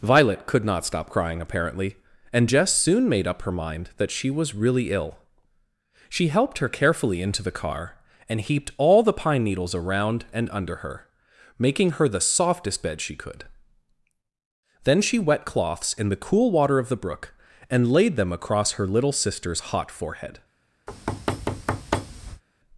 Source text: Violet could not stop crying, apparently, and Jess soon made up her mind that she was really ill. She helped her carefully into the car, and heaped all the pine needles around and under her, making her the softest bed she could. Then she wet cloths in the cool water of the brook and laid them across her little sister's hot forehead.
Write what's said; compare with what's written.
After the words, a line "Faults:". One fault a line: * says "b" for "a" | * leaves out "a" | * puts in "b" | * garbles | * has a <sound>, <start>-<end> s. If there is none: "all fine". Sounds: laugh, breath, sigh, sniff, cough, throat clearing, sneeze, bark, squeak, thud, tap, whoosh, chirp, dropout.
Violet could not stop crying, apparently, and Jess soon made up her mind that she was really ill. She helped her carefully into the car, and heaped all the pine needles around and under her, making her the softest bed she could. Then she wet cloths in the cool water of the brook and laid them across her little sister's hot forehead.
Faults:
* has a thud, 20.9-22.4 s